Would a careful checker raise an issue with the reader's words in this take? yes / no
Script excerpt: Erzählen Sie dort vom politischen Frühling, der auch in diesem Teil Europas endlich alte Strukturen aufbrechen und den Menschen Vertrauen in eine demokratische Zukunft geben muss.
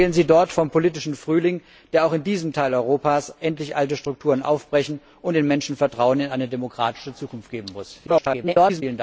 yes